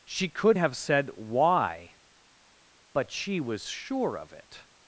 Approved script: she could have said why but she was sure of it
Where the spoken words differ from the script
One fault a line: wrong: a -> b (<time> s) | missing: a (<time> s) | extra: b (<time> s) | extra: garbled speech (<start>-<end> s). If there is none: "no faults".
no faults